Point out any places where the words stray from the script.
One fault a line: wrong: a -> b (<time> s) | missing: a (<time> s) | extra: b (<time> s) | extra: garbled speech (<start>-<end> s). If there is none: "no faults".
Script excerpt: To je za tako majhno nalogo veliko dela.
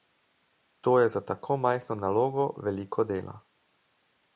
no faults